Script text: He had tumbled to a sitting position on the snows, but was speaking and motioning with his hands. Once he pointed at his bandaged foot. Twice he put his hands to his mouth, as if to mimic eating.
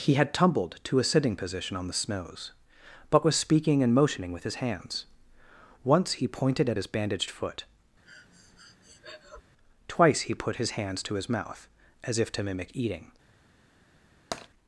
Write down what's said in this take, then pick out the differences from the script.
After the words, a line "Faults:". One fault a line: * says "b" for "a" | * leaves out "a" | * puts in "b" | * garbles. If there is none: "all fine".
He had tumbled to a sitting position on the snows, but was speaking and motioning with his hands. Once he pointed at his bandaged foot. Twice he put his hands to his mouth, as if to mimic eating.
Faults:
all fine